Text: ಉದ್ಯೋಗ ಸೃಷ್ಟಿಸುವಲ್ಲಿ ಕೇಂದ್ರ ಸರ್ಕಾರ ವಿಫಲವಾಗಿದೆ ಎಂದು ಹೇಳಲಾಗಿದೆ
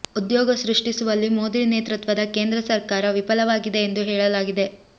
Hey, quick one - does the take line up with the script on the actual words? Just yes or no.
no